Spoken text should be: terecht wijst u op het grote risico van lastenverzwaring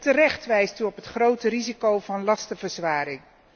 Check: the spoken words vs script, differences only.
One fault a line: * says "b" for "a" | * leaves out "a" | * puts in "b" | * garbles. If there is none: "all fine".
all fine